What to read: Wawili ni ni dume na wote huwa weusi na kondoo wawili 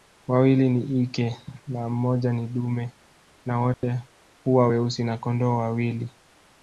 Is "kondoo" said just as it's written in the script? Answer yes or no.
yes